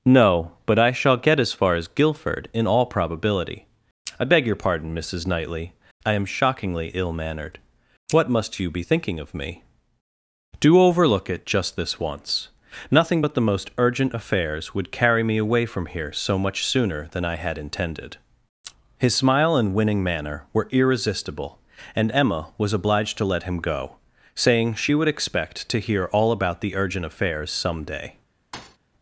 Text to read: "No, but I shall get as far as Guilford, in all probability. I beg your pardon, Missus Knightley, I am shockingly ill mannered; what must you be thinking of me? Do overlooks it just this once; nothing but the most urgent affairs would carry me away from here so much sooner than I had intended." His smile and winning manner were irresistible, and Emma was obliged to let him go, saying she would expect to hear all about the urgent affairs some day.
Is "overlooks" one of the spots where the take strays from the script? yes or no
yes